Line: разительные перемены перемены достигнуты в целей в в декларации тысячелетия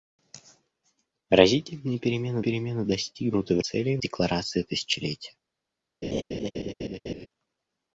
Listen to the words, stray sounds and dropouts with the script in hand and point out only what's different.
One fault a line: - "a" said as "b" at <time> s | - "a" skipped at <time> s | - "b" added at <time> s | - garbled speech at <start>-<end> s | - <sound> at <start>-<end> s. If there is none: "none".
- laugh at 6.0-7.3 s